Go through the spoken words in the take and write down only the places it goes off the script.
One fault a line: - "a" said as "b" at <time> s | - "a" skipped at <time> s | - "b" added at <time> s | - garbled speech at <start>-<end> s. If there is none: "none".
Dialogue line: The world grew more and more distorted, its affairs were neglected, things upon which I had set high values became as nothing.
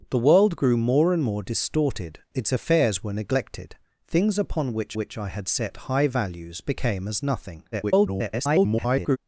- "which" added at 4.9 s
- garbled speech at 7.7-9.2 s